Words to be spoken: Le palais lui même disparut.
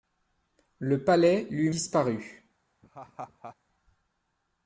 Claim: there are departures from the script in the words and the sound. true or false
true